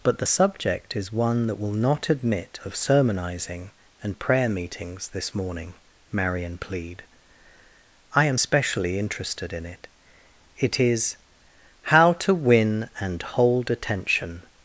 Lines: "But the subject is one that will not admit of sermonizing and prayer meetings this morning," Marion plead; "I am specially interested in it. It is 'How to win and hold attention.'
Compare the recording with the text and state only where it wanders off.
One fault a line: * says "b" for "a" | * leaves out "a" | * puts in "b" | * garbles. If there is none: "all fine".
all fine